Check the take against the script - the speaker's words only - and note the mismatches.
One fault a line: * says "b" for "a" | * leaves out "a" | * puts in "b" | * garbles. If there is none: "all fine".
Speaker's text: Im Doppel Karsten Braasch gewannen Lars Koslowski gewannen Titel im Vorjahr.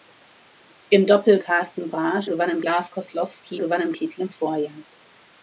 all fine